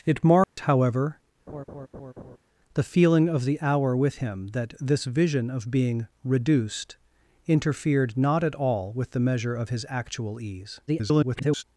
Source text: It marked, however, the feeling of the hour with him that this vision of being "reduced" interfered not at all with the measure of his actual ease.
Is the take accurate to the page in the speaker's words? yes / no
no